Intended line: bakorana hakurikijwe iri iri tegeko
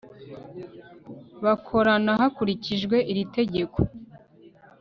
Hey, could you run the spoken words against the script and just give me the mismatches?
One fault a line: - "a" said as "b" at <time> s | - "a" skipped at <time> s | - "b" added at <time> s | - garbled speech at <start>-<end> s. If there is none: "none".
- "iri" skipped at 3.2 s